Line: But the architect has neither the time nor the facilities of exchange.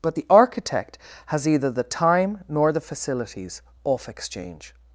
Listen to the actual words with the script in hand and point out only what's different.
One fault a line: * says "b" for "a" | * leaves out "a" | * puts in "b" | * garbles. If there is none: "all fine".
* says "either" for "neither"
* says "off" for "of"